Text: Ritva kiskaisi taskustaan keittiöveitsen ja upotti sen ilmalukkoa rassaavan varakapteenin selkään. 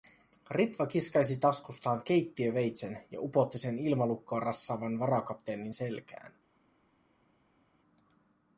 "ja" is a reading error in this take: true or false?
false